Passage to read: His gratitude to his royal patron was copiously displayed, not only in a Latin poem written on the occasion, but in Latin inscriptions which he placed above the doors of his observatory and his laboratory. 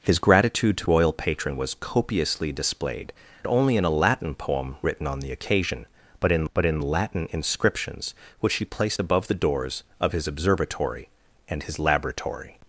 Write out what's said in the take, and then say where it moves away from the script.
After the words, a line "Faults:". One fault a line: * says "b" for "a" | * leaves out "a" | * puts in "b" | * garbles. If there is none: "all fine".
His gratitude to royal patron was copiously displayed, only in a Latin poem written on the occasion, but in but in Latin inscriptions which he placed above the doors of his observatory and his laboratory.
Faults:
* leaves out "his"
* leaves out "not"
* puts in "but in"